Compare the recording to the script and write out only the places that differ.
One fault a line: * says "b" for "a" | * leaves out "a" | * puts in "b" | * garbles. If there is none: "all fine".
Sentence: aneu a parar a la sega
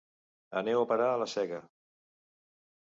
all fine